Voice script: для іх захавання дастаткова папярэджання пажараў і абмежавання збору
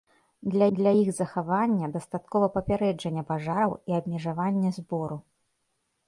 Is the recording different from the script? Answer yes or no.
yes